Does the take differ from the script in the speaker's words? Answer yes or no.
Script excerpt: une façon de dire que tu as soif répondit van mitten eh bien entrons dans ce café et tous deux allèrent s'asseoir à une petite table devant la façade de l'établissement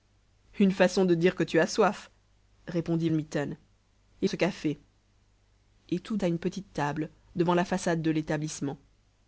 yes